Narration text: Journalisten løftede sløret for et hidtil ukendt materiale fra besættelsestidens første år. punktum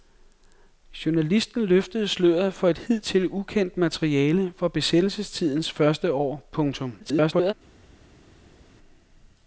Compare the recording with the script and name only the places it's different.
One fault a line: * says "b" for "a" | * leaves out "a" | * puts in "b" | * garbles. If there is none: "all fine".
* garbles